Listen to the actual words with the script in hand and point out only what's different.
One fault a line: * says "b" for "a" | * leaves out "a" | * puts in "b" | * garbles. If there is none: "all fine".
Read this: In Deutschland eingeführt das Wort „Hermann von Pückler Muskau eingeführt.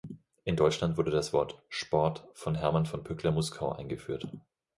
* says "wurde" for "eingeführt"
* puts in "Sport von"